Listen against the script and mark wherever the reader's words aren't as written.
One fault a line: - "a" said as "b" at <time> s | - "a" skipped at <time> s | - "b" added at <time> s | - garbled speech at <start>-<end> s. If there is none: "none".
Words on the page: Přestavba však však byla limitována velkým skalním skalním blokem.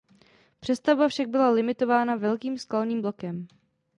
- "však" skipped at 1.3 s
- "skalním" skipped at 3.0 s